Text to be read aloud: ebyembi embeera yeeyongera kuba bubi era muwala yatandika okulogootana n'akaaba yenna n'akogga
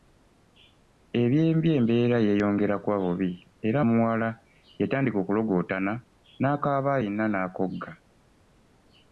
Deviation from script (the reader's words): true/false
false